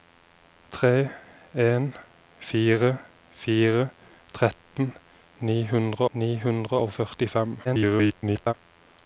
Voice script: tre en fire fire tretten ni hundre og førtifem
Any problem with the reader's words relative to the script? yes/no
yes